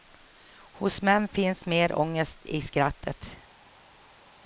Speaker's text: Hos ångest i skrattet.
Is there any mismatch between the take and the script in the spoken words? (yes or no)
yes